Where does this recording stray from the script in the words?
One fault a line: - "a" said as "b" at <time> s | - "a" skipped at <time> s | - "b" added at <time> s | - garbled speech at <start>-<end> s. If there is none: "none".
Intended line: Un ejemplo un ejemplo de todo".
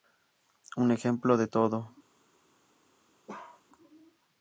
- "un ejemplo" skipped at 1.4 s